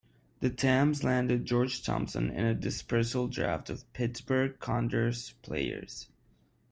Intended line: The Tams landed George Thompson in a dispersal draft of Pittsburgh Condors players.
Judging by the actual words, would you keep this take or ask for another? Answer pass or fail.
pass